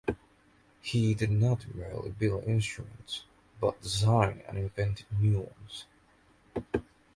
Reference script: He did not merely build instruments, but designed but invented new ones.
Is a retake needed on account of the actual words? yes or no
yes